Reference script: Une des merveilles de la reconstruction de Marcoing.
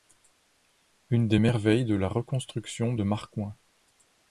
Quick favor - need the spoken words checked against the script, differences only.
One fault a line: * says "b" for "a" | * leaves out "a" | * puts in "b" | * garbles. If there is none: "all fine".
all fine